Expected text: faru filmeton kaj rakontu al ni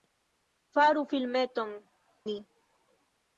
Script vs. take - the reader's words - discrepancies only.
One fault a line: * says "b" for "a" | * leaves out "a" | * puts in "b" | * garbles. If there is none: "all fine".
* leaves out "kaj rakontu al"